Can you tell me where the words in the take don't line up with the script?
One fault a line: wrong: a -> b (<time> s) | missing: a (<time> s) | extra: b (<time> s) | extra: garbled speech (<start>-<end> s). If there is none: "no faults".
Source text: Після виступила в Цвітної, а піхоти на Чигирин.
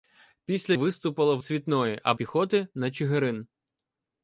no faults